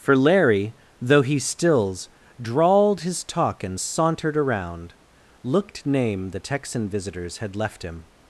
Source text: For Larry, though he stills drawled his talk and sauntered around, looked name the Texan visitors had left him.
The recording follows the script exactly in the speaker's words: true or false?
true